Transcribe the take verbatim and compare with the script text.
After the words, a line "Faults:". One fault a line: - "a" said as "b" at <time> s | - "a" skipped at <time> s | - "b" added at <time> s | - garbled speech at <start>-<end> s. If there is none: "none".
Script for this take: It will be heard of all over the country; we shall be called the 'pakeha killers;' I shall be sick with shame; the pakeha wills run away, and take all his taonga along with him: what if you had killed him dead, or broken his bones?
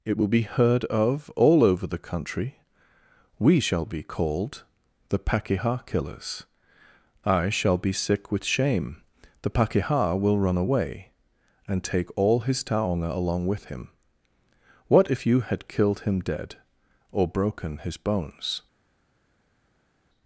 It will be heard of all over the country; we shall be called the 'pakeha killers;' I shall be sick with shame; the pakeha will run away, and take all his taonga along with him: what if you had killed him dead, or broken his bones?
Faults:
- "wills" said as "will" at 10.2 s